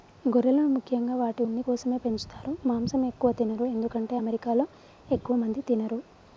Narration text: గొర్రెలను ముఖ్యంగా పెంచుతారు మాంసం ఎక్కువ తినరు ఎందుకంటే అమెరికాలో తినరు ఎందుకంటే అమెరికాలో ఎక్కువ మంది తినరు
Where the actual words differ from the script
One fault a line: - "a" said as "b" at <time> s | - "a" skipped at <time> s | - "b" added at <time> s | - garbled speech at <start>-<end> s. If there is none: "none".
- "వాటి ఉన్ని కోసమే" added at 1.1 s
- "తినరు ఎందుకంటే అమెరికాలో" skipped at 4.7 s